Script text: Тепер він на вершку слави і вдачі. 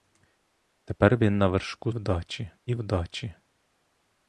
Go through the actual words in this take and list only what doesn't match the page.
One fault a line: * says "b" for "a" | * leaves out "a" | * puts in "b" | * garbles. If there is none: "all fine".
* says "вдачі" for "слави"